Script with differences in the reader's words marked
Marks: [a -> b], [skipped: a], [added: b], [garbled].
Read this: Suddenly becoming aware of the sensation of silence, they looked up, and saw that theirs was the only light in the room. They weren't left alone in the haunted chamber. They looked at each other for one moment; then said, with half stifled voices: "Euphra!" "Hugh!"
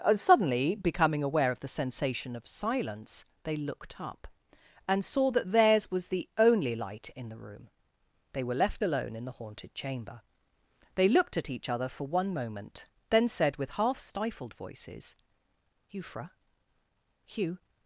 Suddenly becoming aware of the sensation of silence, they looked up, and saw that theirs was the only light in the room. They [weren't -> were] left alone in the haunted chamber. They looked at each other for one moment; then said, with half stifled voices: "Euphra!" "Hugh!"